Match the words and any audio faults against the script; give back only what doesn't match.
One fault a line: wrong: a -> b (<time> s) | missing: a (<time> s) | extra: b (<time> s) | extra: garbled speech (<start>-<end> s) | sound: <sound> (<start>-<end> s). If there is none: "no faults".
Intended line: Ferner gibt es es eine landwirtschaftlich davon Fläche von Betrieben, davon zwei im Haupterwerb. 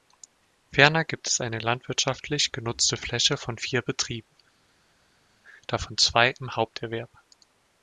missing: es (1.4 s)
wrong: davon -> genutzte (2.5 s)
extra: vier (3.6 s)